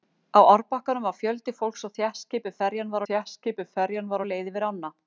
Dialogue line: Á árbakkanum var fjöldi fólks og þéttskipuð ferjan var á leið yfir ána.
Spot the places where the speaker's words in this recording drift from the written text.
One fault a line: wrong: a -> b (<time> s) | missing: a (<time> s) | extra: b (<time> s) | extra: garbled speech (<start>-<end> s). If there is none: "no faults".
extra: þéttskipuð ferjan var (3.1 s)